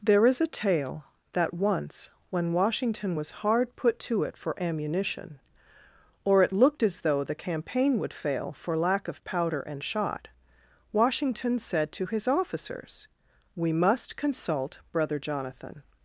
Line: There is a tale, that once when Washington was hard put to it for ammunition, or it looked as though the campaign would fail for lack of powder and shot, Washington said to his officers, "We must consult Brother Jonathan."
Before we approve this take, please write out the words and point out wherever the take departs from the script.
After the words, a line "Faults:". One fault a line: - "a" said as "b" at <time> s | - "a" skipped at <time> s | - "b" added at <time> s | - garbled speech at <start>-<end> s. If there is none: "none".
There is a tale, that once when Washington was hard put to it for ammunition, or it looked as though the campaign would fail for lack of powder and shot, Washington said to his officers, "We must consult Brother Jonathan."
Faults:
none